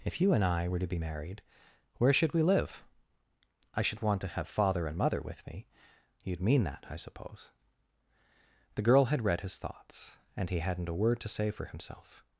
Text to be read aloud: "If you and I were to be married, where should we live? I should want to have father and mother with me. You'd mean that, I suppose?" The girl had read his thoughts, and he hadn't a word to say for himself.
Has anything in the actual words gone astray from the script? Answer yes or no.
no